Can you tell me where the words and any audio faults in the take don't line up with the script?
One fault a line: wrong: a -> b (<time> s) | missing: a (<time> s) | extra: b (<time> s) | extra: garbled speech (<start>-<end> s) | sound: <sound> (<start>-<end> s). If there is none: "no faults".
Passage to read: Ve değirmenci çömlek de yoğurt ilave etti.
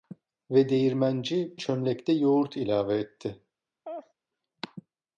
sound: laugh (3.8-4.1 s)